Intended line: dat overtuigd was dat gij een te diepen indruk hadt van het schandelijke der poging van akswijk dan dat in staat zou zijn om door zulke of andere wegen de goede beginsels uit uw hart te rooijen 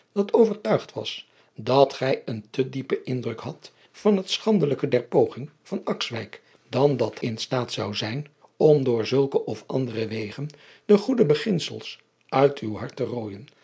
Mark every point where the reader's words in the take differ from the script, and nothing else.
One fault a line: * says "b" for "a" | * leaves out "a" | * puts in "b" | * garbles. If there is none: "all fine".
all fine